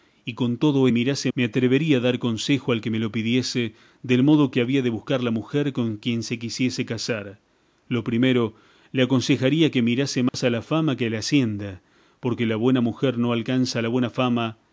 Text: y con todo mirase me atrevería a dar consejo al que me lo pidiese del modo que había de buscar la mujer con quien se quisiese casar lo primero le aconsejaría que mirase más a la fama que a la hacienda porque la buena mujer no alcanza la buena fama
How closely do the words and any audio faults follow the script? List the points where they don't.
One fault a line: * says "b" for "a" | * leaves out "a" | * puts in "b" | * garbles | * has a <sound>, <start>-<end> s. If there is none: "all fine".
* has a dropout, 10.3-10.3 s